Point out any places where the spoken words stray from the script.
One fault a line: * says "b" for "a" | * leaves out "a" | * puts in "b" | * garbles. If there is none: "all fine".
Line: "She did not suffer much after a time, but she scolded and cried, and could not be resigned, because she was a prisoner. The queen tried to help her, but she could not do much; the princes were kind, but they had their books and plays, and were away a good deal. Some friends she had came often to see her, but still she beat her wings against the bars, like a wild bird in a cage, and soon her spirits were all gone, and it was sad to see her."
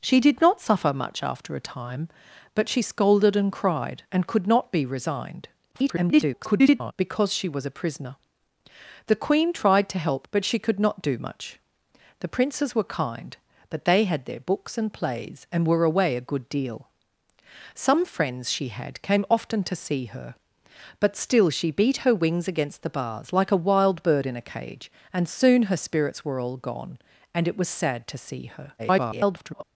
* garbles
* leaves out "her"
* garbles